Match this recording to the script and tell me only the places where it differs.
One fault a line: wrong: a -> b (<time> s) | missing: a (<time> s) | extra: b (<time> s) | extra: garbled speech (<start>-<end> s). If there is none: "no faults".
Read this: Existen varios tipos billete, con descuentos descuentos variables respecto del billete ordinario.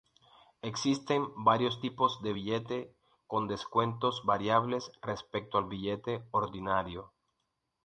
extra: de (2.2 s)
missing: descuentos (4.2 s)
wrong: del -> al (5.6 s)